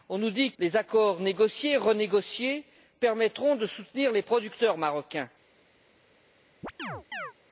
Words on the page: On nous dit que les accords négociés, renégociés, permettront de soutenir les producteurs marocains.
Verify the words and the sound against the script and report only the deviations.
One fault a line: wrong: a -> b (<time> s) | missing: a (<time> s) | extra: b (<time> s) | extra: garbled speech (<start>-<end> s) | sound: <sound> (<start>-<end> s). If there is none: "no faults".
missing: que (0.5 s)
sound: chirp (6.6-7.3 s)